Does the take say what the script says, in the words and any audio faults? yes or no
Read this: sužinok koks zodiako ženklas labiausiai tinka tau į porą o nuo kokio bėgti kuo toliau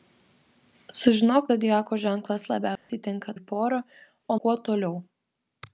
no